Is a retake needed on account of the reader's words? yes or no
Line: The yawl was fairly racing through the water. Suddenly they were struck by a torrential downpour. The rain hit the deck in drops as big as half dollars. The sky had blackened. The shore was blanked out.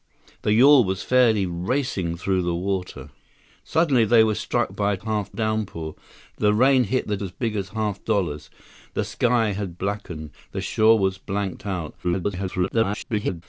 yes